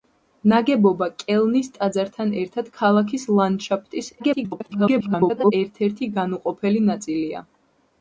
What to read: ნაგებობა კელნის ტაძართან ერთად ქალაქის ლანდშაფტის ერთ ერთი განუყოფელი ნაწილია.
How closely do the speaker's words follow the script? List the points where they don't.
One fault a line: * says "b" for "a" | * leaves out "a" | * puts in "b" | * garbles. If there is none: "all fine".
* garbles